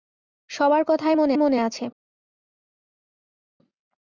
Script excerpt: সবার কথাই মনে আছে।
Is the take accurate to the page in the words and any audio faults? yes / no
no